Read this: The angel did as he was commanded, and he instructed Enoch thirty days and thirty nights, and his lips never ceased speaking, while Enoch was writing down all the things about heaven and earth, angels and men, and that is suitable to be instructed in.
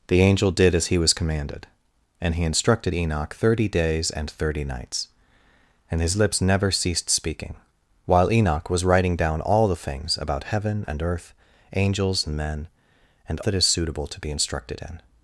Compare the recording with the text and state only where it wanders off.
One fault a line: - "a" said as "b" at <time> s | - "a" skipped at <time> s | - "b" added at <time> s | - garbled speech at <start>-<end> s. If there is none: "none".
none